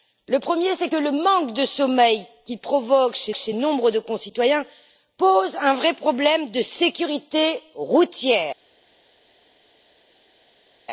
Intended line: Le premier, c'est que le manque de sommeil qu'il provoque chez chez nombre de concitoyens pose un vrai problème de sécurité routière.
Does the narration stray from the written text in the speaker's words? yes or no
no